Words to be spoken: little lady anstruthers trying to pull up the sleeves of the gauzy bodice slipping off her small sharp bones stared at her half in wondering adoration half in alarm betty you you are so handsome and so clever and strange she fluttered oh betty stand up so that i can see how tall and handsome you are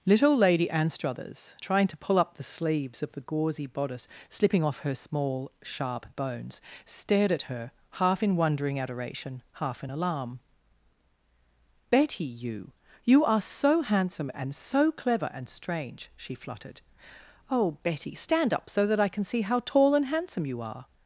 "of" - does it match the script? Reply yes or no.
yes